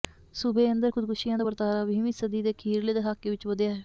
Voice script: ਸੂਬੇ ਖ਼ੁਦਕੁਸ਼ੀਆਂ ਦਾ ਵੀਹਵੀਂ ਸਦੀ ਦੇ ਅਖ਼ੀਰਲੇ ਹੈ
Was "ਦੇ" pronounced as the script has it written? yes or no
yes